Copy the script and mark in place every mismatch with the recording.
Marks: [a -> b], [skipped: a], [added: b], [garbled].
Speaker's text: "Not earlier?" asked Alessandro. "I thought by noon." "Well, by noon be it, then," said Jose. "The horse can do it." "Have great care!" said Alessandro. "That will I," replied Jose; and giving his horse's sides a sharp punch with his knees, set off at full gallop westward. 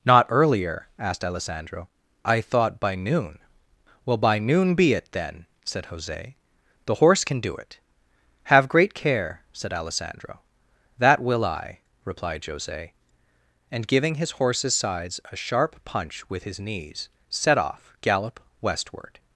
"Not earlier?" asked Alessandro. "I thought by noon." "Well, by noon be it, then," said Jose. "The horse can do it." "Have great care!" said Alessandro. "That will I," replied Jose; and giving his horse's sides a sharp punch with his knees, set off [skipped: at full] gallop westward.